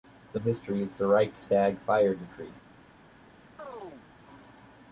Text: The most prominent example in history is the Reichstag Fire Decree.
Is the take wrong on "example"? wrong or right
wrong